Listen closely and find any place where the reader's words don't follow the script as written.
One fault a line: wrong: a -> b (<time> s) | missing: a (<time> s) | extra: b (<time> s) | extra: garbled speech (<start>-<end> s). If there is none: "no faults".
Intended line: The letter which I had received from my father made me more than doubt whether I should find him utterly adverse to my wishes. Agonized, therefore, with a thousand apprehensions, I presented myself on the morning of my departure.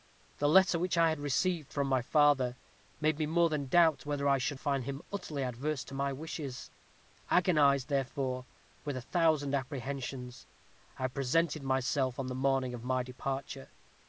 no faults